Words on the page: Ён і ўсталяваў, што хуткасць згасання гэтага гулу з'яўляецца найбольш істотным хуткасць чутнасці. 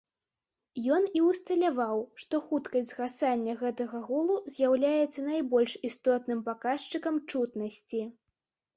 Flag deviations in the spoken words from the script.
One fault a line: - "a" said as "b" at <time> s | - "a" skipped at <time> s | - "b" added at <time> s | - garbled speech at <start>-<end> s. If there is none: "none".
- "хуткасць" said as "паказчыкам" at 6.5 s